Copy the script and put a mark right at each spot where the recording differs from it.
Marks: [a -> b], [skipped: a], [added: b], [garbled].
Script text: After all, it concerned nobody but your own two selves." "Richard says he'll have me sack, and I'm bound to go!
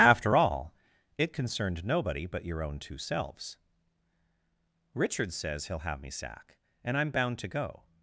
After all, it concerned nobody but your own two selves." "Richard says he'll have me sack, and I'm bound to go!